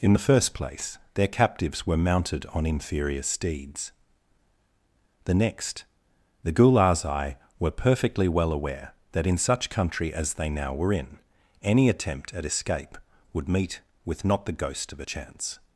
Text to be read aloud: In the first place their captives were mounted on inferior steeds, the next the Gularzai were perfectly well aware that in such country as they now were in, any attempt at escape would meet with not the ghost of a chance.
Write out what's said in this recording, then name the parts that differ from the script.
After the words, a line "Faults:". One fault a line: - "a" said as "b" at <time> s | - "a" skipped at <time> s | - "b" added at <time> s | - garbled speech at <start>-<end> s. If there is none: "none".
In the first place their captives were mounted on inferior steeds, the next the Gularzai were perfectly well aware that in such country as they now were in, any attempt at escape would meet with not the ghost of a chance.
Faults:
none